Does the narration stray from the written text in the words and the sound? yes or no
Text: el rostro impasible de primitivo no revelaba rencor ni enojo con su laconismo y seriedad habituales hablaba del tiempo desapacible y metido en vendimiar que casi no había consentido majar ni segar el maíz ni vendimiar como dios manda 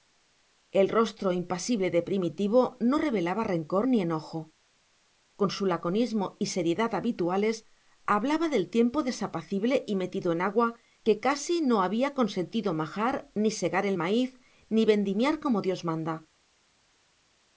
yes